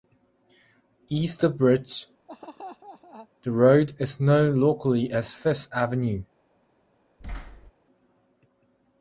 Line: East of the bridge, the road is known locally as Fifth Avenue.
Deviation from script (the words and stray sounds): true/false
true